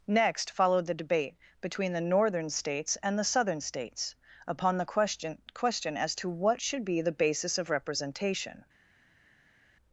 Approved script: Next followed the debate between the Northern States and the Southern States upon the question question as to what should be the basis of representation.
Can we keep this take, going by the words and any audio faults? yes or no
yes